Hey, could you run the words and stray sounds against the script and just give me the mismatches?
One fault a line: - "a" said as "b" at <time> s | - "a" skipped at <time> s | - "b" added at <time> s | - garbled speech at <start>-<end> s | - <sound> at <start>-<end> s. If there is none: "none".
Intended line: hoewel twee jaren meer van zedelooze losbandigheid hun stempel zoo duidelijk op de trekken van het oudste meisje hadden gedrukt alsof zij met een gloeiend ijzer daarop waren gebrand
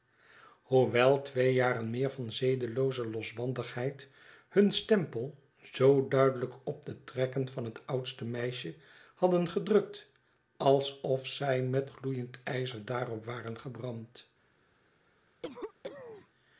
- "een" skipped at 11.9 s
- cough at 15.4-16.3 s